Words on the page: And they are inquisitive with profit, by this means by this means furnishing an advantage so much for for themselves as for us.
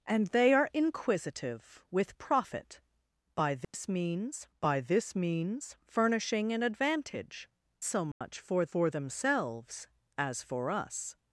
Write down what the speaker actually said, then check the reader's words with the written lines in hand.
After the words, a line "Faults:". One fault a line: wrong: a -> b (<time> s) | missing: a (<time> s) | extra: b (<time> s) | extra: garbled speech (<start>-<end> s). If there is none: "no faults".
And they are inquisitive with profit, by this means by this means furnishing an advantage so much for for themselves as for us.
Faults:
no faults